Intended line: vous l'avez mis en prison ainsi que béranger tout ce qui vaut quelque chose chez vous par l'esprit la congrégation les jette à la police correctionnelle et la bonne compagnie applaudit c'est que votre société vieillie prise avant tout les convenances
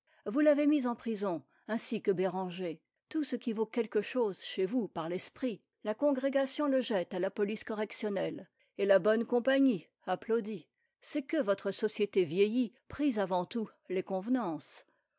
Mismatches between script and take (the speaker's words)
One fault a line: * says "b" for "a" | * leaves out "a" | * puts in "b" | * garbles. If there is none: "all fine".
* says "le" for "les"